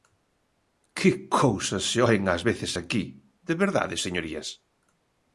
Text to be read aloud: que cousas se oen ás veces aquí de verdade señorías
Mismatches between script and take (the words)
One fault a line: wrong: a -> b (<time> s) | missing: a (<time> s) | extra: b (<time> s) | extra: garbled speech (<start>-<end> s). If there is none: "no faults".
no faults